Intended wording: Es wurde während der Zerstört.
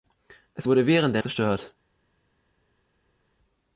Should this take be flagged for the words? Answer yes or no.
no